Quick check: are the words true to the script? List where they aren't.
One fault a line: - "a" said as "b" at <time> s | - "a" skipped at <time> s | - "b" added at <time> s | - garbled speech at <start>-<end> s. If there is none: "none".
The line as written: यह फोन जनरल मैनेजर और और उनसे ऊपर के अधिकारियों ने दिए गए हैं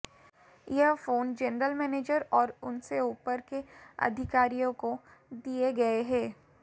- "और" skipped at 2.5 s
- "ने" said as "को" at 4.8 s